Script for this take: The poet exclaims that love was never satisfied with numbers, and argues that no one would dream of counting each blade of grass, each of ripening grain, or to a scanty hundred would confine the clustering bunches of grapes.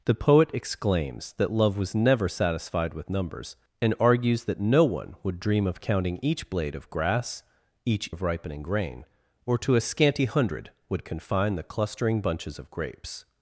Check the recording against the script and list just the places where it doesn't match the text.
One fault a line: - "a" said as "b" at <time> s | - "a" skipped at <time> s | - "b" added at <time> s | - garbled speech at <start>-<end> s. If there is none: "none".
none